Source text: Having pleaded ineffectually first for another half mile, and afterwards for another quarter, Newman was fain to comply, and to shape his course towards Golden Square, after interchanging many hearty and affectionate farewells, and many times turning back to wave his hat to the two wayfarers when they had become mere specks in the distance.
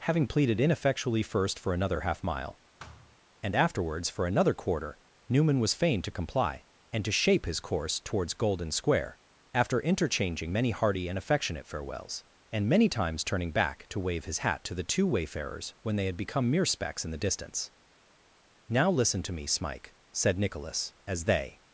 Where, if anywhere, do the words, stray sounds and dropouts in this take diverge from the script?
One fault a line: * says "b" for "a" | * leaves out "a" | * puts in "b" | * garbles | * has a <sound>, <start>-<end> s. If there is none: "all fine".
* has a thud, 2.8-3.2 s
* puts in "Now listen to me Smike said Nicholas as they"